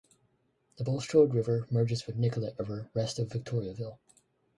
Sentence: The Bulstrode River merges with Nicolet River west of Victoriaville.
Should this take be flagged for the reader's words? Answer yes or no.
no